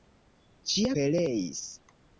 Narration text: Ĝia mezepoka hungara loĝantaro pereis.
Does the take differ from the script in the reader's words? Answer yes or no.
yes